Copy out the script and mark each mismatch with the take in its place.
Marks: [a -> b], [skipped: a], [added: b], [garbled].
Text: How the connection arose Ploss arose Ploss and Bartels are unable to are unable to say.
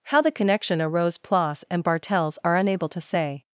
How the connection arose Ploss [skipped: arose Ploss] and Bartels are unable to [skipped: are unable to] say.